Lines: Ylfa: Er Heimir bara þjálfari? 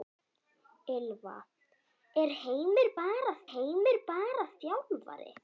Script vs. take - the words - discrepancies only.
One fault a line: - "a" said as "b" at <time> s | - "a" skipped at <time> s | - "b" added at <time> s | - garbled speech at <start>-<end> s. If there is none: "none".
- "Heimir bara" added at 3.5 s